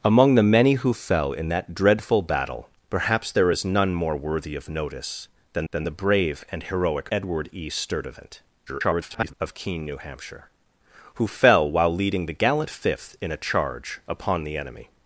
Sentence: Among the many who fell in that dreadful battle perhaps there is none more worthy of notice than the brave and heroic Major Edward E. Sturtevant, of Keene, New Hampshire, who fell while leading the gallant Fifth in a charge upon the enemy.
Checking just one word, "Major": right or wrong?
wrong